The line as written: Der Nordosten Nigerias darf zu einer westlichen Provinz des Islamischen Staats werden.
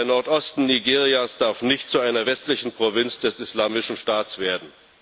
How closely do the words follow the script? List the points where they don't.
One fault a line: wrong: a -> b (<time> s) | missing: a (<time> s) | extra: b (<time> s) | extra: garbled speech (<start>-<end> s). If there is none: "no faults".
extra: nicht (1.6 s)